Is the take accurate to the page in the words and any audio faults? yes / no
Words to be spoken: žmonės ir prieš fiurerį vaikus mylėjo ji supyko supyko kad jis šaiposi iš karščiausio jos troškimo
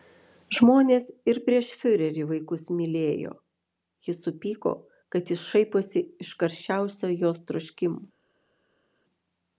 no